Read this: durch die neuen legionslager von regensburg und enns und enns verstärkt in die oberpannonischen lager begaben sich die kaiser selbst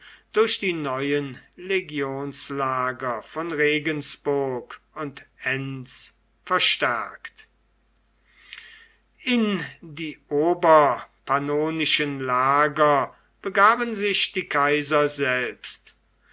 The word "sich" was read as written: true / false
true